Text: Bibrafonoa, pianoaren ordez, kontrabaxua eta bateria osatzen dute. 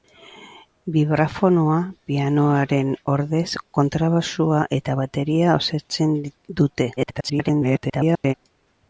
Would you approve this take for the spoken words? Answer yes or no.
no